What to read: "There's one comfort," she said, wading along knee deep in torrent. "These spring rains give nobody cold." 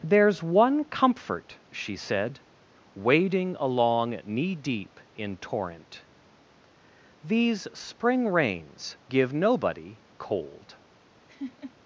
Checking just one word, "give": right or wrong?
right